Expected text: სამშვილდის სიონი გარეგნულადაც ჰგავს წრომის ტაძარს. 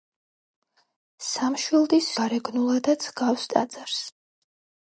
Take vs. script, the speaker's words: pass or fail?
fail